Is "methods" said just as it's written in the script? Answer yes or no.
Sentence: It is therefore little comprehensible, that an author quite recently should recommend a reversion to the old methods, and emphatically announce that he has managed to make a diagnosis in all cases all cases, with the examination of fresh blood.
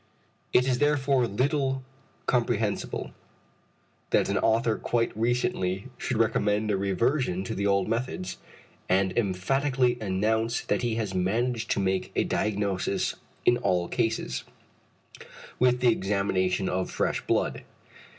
yes